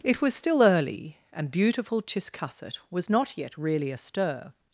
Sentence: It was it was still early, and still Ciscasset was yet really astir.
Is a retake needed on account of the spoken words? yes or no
yes